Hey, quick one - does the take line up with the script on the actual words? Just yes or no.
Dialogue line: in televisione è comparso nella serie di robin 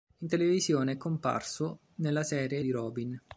yes